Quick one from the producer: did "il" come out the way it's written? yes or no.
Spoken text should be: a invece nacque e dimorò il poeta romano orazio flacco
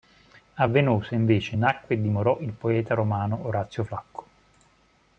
yes